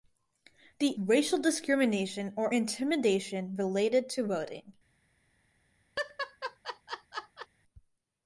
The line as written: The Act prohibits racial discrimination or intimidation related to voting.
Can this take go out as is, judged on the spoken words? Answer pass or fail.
fail